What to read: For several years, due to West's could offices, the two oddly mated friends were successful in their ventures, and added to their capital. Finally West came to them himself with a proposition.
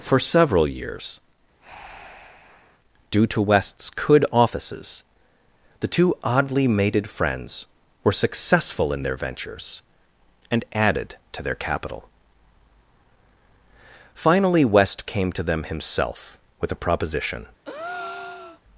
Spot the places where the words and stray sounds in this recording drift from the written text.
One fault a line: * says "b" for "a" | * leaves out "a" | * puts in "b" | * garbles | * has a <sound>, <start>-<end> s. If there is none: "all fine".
* has a breath, 1.6-2.8 s
* has a breath, 17.6-18.6 s